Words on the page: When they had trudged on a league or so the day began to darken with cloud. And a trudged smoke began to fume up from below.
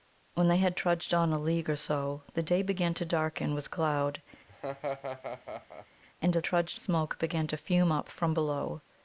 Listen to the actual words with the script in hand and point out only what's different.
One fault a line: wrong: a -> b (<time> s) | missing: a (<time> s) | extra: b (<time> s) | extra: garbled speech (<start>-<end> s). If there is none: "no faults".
no faults